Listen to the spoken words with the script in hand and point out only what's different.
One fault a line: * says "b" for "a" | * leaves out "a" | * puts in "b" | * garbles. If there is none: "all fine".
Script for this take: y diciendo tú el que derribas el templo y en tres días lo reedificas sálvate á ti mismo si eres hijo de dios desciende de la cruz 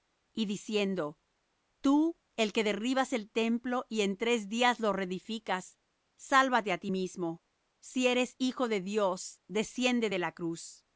all fine